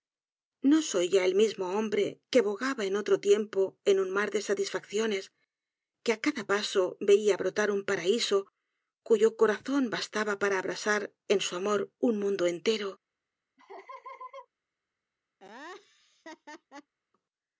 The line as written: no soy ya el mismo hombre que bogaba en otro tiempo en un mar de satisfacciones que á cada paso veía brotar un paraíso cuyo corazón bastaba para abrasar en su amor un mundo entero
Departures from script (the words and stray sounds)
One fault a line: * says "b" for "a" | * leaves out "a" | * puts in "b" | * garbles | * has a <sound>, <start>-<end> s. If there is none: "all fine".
* has a laugh, 13.6-14.5 s
* has a laugh, 15.4-16.9 s